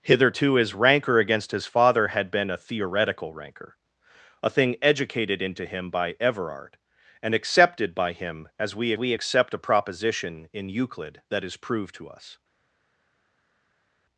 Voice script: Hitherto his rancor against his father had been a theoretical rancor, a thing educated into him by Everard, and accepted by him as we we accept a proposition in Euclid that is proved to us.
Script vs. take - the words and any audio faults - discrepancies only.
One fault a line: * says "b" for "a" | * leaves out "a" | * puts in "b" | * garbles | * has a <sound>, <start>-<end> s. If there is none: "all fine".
all fine